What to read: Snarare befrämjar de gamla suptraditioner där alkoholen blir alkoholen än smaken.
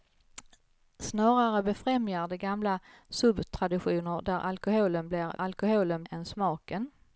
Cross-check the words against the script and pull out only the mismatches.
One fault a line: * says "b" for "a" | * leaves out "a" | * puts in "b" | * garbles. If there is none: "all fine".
all fine